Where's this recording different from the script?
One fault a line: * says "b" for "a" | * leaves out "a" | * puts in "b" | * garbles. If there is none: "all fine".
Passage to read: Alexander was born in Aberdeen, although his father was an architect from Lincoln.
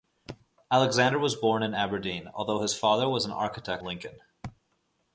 * leaves out "from"